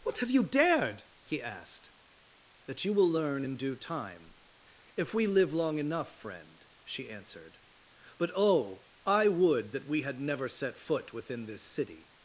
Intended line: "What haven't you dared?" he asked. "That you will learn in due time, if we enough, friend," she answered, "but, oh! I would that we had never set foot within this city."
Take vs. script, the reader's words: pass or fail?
fail